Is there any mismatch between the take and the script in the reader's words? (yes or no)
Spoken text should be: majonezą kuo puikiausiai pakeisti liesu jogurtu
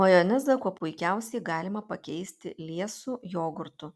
yes